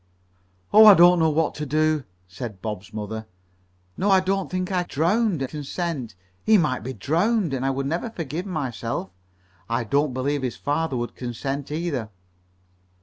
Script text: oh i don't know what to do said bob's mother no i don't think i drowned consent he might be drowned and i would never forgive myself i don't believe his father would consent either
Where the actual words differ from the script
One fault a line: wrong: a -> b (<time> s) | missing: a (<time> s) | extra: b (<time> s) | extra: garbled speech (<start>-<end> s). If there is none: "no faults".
no faults